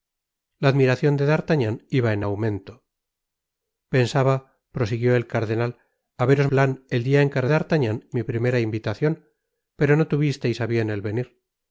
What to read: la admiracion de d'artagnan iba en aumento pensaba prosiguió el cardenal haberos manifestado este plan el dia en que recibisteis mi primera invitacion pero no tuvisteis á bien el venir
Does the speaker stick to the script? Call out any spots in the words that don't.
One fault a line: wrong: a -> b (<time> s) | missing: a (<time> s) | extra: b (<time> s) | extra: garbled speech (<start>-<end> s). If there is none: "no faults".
missing: manifestado este (6.5 s)
wrong: recibisteis -> d'artagnan (7.5 s)